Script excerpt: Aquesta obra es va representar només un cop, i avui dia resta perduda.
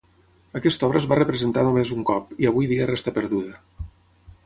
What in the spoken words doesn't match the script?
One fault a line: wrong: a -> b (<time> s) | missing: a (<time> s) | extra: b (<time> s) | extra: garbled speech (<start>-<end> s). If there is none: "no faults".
no faults